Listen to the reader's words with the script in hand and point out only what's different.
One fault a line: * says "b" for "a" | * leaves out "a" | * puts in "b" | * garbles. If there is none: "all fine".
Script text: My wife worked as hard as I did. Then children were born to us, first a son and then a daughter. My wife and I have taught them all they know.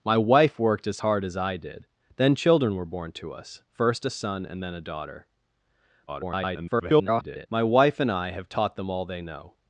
* garbles